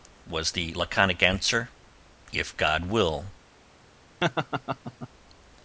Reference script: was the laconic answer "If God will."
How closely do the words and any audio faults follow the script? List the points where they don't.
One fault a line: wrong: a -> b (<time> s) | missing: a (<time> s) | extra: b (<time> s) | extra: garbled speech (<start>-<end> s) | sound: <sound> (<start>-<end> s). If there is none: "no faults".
sound: laugh (4.2-5.1 s)